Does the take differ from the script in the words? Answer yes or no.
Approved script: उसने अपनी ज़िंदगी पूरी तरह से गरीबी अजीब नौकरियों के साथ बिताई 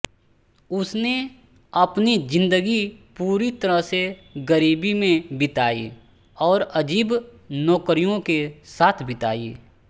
yes